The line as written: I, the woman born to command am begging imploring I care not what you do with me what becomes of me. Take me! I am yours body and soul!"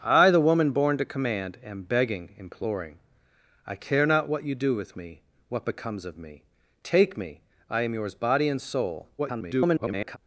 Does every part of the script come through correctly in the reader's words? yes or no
no